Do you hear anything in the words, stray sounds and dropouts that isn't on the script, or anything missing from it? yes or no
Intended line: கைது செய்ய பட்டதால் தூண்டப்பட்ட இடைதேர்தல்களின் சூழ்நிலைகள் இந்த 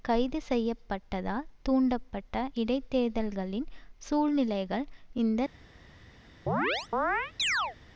yes